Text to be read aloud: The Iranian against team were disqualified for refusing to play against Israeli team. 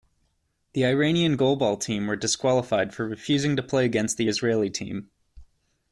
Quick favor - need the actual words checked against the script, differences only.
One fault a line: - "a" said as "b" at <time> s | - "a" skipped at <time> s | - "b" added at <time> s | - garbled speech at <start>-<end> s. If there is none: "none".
- "against" said as "goalball" at 1.3 s
- "the" added at 4.2 s